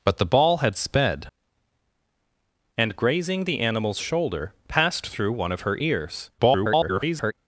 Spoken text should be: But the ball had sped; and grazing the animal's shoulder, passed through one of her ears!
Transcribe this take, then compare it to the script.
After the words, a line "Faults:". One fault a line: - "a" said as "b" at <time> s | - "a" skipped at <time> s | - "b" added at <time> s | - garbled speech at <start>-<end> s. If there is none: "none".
But the ball had sped; and grazing the animal's shoulder, passed through one of her ears! [garbled]
Faults:
- garbled speech at 6.4-7.3 s